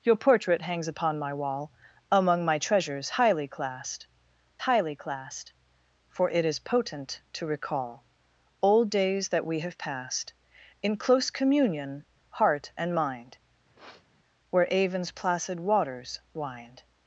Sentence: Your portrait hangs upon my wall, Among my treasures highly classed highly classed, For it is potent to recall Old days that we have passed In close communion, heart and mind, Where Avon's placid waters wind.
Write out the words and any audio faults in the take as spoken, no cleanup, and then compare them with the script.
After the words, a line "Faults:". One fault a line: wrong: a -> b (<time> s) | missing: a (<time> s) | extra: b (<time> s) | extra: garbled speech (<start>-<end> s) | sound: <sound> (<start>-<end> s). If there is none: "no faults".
Your portrait hangs upon my wall, Among my treasures highly classed highly classed, For it is potent to recall Old days that we have passed In close communion, heart and mind, Where Avon's placid waters wind.
Faults:
sound: sniff (13.8-14.1 s)